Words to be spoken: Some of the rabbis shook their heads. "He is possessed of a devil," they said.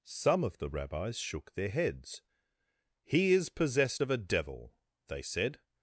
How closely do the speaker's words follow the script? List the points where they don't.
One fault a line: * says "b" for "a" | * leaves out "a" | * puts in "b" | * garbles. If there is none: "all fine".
all fine